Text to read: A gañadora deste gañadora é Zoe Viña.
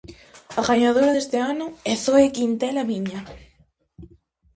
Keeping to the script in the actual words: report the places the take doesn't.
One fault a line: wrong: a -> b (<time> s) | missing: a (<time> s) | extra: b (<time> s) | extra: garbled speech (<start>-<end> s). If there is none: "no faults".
wrong: gañadora -> ano (1.5 s)
extra: Quintela (2.3 s)